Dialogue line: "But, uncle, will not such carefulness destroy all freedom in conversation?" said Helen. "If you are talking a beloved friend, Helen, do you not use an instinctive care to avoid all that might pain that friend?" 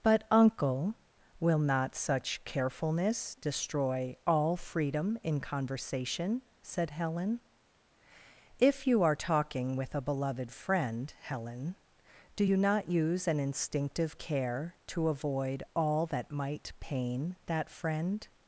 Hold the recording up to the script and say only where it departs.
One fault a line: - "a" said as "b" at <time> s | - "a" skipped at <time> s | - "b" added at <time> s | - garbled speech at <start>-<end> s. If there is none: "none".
- "with" added at 9.8 s